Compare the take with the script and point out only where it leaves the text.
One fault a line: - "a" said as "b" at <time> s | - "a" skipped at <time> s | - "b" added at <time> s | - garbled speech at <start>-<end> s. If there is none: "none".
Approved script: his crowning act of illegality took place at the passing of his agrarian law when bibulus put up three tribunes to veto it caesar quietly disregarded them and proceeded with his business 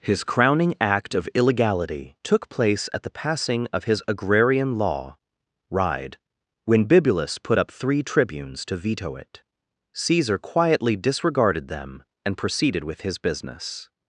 - "ride" added at 5.7 s